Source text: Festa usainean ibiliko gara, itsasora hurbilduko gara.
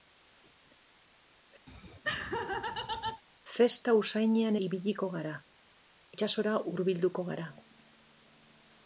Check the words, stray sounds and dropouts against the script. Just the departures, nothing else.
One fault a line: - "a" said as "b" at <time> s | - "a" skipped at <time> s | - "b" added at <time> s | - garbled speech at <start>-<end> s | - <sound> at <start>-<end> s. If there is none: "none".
- laugh at 1.7-3.2 s